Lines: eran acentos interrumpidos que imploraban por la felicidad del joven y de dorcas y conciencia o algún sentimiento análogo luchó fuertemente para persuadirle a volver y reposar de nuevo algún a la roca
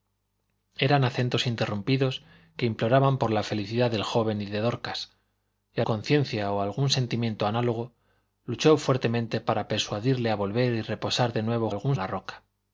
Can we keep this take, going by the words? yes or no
yes